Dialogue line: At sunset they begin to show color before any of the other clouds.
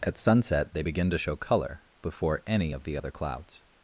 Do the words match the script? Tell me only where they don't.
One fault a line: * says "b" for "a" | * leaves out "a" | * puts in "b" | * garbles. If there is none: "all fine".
all fine